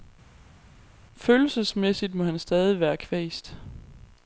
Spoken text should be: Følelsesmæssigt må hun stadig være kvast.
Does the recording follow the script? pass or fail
fail